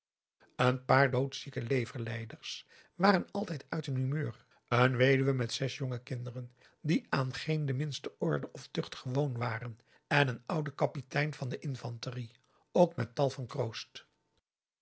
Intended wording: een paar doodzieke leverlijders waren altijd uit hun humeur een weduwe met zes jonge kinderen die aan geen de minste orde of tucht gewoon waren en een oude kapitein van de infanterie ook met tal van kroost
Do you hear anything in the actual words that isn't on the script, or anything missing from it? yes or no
no